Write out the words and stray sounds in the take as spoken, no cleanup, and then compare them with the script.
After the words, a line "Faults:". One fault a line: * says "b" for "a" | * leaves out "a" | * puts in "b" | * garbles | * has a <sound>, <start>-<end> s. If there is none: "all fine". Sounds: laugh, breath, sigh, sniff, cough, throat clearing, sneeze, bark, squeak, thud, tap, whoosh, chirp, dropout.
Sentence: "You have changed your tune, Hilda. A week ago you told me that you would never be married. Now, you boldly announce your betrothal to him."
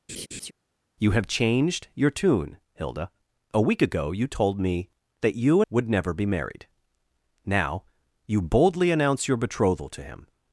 "You have changed your tune, Hilda. A week ago you told me that you would never be married. Now, you boldly announce your betrothal to him."
Faults:
* has a laugh, 0.1-0.5 s